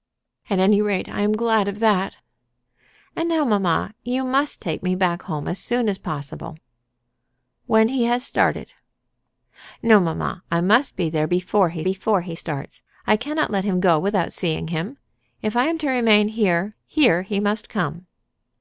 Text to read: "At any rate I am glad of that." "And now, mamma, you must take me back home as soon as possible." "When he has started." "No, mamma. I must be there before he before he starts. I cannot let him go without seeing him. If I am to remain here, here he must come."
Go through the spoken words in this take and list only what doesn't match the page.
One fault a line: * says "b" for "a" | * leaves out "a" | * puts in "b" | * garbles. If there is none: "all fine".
all fine